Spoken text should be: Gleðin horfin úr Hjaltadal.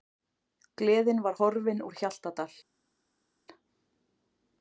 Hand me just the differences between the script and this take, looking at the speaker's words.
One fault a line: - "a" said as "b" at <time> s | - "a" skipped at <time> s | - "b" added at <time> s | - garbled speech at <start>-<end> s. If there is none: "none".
- "var" added at 1.3 s